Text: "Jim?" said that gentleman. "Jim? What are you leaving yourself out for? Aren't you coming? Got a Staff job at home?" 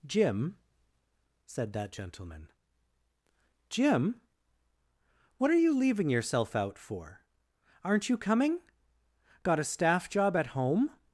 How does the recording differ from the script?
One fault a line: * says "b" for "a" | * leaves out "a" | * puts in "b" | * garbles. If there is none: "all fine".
all fine